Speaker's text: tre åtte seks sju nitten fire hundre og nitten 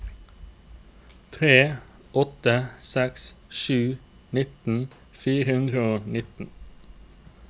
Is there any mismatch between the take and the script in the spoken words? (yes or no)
no